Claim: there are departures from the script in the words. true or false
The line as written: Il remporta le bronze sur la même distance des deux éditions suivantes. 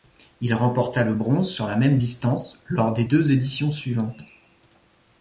true